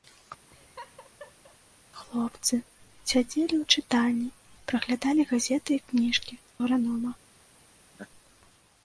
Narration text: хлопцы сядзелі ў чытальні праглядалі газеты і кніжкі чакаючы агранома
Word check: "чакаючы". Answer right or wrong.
wrong